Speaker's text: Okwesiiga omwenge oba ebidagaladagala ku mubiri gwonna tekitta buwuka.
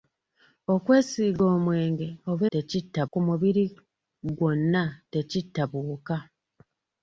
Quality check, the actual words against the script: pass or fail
fail